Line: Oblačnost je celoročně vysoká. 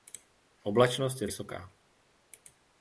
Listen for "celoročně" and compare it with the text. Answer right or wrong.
wrong